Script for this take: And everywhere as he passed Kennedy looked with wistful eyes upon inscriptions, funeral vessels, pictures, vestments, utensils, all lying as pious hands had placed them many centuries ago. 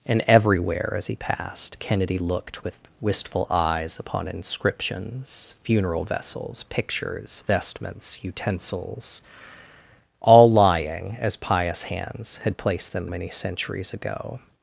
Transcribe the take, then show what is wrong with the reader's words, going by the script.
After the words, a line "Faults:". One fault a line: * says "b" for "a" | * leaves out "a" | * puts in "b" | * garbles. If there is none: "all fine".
And everywhere as he passed Kennedy looked with wistful eyes upon inscriptions, funeral vessels, pictures, vestments, utensils, all lying as pious hands had placed them many centuries ago.
Faults:
all fine